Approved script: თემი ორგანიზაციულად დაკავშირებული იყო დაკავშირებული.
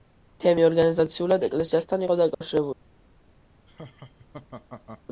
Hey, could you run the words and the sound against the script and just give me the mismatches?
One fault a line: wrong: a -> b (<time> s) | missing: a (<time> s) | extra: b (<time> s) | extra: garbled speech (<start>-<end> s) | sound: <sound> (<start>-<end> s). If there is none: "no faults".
wrong: დაკავშირებული -> ეკლესიასთან (1.5 s)
sound: dropout (2.3-2.4 s)
sound: laugh (3.7-5.0 s)